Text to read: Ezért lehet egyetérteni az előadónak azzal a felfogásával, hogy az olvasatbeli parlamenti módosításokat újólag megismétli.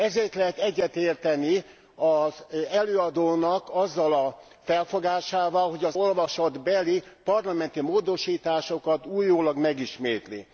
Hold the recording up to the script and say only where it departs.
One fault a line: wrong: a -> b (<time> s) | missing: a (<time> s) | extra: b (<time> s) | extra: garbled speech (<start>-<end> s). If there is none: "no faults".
no faults